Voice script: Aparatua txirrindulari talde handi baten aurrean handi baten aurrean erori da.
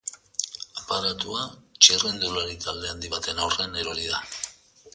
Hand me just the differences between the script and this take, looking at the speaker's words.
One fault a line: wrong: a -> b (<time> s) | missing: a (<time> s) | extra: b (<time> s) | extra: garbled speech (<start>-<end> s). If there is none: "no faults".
missing: handi baten aurrean (3.8 s)